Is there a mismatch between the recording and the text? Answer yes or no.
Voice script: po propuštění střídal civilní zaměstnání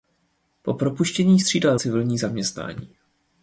no